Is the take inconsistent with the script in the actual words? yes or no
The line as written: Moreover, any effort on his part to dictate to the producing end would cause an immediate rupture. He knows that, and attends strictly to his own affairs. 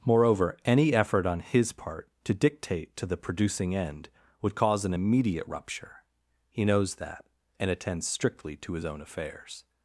no